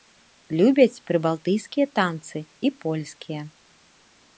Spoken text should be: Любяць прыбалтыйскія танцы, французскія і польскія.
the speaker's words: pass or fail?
fail